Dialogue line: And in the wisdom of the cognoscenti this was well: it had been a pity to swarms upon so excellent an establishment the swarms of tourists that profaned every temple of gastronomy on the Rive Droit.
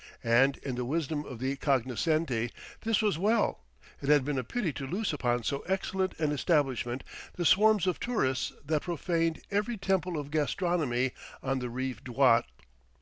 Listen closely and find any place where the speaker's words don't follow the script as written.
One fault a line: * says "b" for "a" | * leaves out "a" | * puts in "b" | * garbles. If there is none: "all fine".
* says "loose" for "swarms"